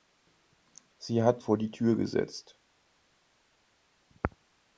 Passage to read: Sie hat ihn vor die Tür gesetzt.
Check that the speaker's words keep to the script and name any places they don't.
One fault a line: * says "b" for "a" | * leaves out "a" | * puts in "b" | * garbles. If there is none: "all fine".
* leaves out "ihn"